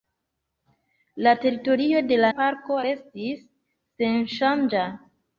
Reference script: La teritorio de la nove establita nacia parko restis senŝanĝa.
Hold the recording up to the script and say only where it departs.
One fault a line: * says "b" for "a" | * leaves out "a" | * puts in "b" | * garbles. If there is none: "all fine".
* leaves out "nove establita nacia"